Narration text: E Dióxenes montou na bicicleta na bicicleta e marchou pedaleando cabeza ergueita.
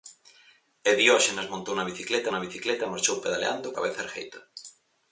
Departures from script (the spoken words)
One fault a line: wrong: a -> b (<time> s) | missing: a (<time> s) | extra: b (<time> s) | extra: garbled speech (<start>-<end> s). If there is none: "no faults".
no faults